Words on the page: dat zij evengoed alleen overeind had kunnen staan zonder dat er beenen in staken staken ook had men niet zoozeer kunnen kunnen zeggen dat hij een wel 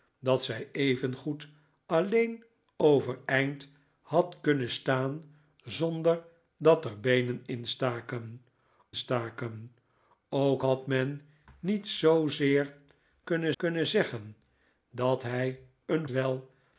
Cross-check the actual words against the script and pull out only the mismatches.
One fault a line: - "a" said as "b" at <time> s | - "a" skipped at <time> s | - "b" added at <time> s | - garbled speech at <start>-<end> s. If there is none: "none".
none